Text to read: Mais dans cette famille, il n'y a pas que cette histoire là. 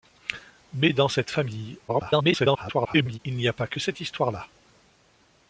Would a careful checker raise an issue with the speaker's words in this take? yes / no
yes